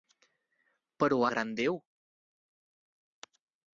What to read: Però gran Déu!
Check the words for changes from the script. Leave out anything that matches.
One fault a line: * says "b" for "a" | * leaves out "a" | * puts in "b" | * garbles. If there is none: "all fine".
all fine